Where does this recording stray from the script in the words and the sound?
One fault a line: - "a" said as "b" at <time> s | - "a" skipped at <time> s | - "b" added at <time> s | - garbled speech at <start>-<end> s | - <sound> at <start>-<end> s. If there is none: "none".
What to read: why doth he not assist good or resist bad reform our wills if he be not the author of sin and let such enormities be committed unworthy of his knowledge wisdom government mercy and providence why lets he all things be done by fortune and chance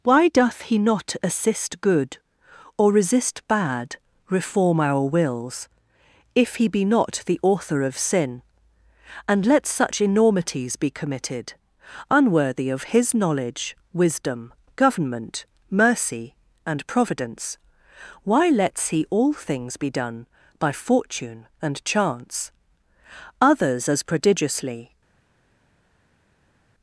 - "others as prodigiously" added at 23.4 s